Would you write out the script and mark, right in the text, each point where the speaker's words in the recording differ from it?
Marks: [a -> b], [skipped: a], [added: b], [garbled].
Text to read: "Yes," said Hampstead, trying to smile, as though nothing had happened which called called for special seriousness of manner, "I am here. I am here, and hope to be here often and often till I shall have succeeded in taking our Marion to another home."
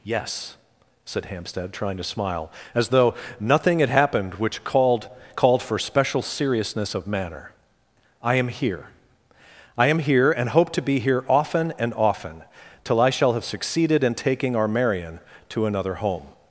"Yes," said Hampstead, trying to smile, as though nothing had happened which called called for special seriousness of manner, "I am here. I am here, and hope to be here often and often till I shall have succeeded in taking our Marion to another home."